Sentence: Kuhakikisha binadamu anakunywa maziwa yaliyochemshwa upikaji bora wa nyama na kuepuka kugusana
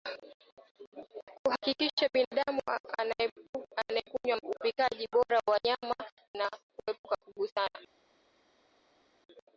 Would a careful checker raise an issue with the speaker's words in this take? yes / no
yes